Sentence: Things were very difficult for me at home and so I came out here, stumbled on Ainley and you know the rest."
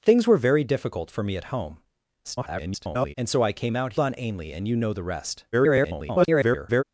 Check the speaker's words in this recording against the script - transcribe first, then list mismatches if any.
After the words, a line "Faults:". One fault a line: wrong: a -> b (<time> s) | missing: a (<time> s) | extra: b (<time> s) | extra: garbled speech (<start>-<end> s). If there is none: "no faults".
Things were very difficult for me at home [garbled] and so I came out on Ainley and you know the rest." [garbled]
Faults:
extra: garbled speech (2.2-3.1 s)
missing: here stumbled (3.9 s)
extra: garbled speech (5.5-6.8 s)